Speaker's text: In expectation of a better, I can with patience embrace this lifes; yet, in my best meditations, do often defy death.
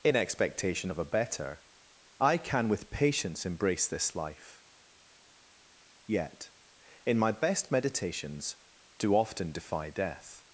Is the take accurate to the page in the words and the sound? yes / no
no